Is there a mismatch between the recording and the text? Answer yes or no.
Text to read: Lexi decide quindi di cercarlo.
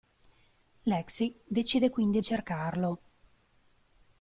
yes